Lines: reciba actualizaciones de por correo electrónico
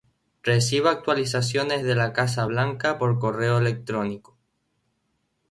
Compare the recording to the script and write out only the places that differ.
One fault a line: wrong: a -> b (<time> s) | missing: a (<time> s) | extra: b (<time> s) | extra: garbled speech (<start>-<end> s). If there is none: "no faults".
extra: la casa blanca (1.9 s)